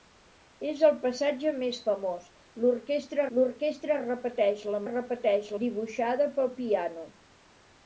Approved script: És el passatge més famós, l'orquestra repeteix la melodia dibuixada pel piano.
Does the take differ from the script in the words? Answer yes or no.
yes